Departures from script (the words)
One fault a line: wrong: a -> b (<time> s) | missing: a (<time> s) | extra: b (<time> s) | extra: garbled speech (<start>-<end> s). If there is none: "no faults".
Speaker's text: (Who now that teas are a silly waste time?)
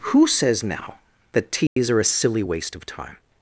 extra: says (0.2 s)
extra: of (2.8 s)